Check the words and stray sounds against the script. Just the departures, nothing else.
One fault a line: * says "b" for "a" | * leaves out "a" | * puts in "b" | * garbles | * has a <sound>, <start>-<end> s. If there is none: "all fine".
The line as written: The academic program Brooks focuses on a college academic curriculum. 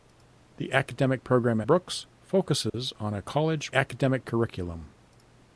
* has a dropout, 2.7-2.7 s